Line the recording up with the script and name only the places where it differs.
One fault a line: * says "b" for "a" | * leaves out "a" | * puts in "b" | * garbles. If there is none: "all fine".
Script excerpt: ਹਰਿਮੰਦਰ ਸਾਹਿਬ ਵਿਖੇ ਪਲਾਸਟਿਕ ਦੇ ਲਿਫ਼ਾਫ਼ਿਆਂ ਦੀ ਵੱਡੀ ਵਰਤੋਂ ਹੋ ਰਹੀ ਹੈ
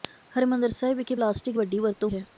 * leaves out "ਦੇ ਲਿਫ਼ਾਫ਼ਿਆਂ ਦੀ"
* leaves out "ਹੋ ਰਹੀ"